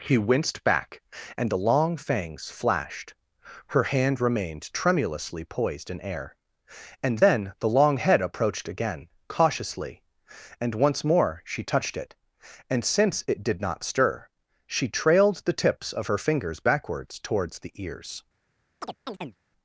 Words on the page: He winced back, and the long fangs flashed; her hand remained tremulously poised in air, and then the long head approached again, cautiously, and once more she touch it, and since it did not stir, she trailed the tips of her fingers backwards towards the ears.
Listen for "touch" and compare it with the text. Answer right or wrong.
wrong